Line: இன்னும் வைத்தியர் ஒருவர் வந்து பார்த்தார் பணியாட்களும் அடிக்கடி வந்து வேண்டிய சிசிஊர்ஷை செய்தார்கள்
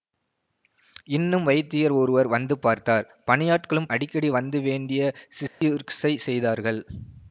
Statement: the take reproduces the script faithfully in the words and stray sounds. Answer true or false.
false